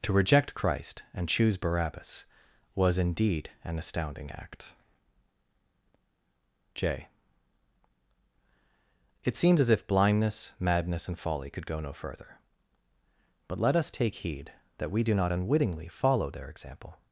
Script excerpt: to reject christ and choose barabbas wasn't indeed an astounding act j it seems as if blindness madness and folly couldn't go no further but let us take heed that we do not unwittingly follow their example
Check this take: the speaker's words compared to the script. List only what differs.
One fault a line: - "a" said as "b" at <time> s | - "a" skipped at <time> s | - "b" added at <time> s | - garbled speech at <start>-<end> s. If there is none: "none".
- "wasn't" said as "was" at 2.7 s
- "couldn't" said as "could" at 11.5 s